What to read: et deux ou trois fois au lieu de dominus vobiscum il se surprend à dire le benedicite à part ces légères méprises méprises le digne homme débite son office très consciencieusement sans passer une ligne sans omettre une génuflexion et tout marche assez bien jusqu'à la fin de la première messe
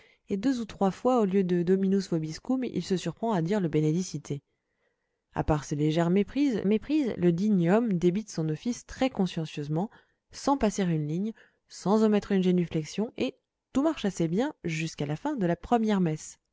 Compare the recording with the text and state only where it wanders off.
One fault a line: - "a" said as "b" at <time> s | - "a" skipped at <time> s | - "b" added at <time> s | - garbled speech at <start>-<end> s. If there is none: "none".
none